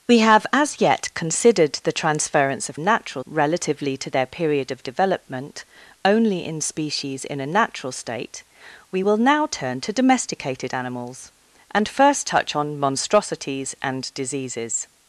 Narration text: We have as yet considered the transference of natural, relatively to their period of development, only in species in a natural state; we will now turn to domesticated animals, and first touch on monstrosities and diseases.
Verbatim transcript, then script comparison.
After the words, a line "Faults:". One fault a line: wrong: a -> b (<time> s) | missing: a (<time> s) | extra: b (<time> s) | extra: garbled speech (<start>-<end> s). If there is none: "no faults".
We have as yet considered the transference of natural, relatively to their period of development, only in species in a natural state; we will now turn to domesticated animals, and first touch on monstrosities and diseases.
Faults:
no faults